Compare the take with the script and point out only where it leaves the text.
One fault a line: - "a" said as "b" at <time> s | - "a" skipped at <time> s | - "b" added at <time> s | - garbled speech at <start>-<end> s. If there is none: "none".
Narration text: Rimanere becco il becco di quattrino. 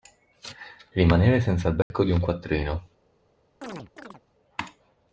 - "becco" said as "senza" at 1.4 s
- "un" added at 2.1 s